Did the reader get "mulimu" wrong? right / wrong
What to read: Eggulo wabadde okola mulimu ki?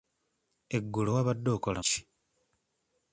wrong